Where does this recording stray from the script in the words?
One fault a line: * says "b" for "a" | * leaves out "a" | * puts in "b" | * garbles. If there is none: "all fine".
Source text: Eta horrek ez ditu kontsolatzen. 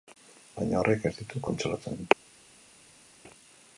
* says "Baina" for "Eta"